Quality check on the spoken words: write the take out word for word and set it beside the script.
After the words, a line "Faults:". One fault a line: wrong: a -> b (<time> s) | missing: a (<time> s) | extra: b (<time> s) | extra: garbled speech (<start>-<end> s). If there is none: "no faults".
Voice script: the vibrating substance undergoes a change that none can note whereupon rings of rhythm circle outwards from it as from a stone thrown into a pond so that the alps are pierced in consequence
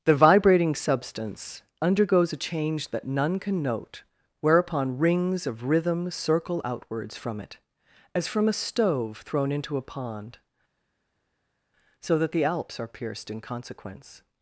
the vibrating substance undergoes a change that none can note whereupon rings of rhythm circle outwards from it as from a stove thrown into a pond so that the alps are pierced in consequence
Faults:
wrong: stone -> stove (8.5 s)